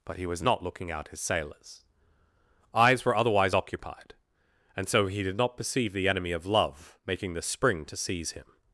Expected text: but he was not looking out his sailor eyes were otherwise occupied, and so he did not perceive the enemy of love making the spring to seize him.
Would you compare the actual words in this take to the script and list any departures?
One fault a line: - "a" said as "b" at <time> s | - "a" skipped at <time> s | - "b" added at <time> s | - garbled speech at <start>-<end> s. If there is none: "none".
- "sailor" said as "sailors" at 1.2 s